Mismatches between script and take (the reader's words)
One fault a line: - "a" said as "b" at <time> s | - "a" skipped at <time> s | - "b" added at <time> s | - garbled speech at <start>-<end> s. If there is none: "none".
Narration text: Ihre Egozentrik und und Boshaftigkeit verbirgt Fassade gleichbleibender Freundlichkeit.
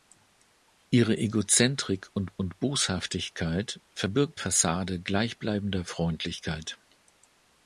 none